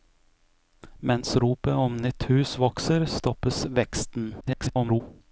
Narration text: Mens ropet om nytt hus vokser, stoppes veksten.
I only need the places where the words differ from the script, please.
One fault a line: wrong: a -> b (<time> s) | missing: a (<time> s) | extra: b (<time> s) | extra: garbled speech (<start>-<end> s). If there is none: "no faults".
extra: garbled speech (4.4-5.0 s)